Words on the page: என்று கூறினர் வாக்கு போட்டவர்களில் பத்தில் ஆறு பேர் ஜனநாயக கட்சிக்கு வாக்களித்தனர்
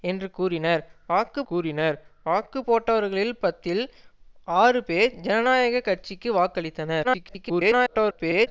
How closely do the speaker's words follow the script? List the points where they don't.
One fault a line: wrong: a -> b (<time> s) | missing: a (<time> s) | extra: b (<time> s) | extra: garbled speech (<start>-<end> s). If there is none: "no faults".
extra: கூறினர் வாக்கு (1.4 s)
extra: garbled speech (7.0-8.5 s)